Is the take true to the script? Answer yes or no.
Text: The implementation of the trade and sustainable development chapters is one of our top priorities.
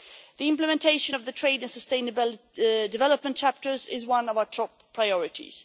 yes